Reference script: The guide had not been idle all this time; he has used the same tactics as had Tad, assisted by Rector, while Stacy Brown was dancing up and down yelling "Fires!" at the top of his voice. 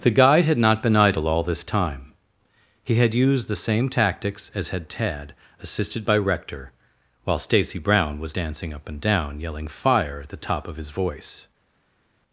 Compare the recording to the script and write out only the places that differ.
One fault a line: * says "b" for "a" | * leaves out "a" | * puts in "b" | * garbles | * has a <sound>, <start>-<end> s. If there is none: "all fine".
* says "had" for "has"
* says "Fire" for "Fires"